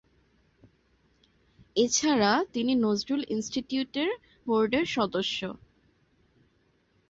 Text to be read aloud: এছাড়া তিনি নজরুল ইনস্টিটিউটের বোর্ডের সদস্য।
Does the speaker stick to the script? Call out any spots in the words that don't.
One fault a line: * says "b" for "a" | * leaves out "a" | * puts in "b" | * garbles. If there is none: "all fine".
all fine